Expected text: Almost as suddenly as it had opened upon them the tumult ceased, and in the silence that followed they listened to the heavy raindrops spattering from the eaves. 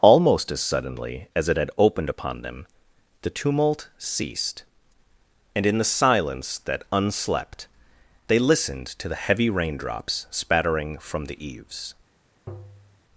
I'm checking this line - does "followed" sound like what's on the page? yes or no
no